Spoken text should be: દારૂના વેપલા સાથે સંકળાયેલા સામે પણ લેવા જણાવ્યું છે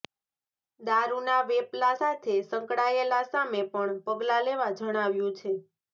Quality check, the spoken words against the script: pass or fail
fail